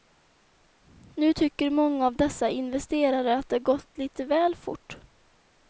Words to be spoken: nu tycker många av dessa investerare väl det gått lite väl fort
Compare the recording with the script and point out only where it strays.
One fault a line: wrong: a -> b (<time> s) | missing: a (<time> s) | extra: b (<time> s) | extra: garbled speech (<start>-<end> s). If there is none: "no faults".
wrong: väl -> att (3.4 s)